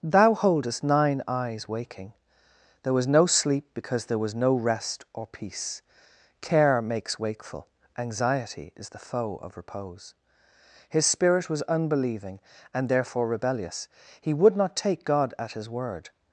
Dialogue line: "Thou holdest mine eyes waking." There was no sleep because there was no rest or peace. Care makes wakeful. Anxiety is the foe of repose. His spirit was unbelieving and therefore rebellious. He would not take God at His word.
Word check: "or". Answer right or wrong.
right